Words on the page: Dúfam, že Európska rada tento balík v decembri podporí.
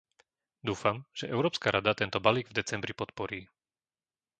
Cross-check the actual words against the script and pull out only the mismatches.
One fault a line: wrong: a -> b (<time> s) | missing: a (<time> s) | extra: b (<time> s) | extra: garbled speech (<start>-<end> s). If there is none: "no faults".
no faults